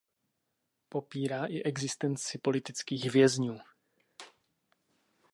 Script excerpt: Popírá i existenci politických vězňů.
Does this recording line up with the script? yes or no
yes